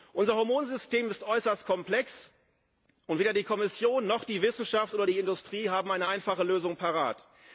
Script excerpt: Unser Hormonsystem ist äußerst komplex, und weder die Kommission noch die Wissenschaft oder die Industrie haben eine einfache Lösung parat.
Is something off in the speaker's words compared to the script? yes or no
no